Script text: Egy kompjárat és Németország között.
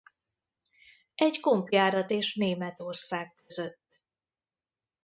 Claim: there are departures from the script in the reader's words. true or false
false